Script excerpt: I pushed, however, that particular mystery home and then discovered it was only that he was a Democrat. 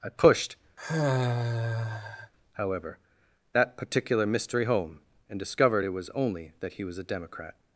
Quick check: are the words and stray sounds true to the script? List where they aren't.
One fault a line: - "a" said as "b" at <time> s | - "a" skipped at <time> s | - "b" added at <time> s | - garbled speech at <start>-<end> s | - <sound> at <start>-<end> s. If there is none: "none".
- sigh at 0.8-2.3 s
- "then" skipped at 5.4 s